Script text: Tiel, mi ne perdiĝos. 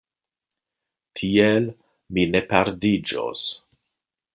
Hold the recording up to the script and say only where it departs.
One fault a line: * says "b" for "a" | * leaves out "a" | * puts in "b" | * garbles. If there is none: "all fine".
all fine